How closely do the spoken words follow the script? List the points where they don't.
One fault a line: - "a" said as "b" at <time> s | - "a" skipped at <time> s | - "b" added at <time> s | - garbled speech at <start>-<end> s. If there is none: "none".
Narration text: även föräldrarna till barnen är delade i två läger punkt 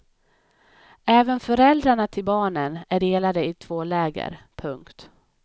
none